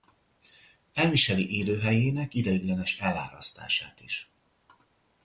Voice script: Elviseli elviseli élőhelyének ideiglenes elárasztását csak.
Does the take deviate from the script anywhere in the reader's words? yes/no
yes